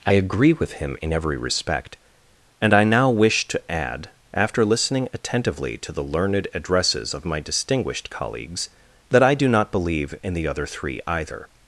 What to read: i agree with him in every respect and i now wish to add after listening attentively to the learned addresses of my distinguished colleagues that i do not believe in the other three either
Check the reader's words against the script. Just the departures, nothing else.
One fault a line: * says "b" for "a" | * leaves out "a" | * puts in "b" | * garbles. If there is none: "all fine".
all fine